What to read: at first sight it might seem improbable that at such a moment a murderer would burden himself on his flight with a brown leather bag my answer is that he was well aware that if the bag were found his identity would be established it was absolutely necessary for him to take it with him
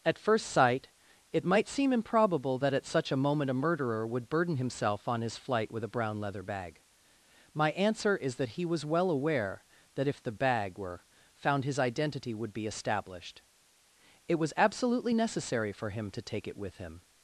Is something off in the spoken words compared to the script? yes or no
no